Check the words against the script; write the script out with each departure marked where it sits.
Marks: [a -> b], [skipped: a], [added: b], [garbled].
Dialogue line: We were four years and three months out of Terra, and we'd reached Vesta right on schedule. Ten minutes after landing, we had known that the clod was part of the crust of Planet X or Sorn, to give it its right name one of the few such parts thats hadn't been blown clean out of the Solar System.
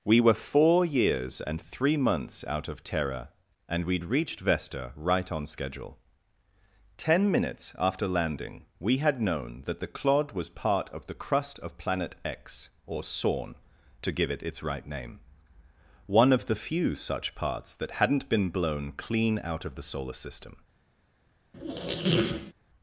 We were four years and three months out of Terra, and we'd reached Vesta right on schedule. Ten minutes after landing, we had known that the clod was part of the crust of Planet X or Sorn, to give it its right name one of the few such parts [thats -> that] hadn't been blown clean out of the Solar System.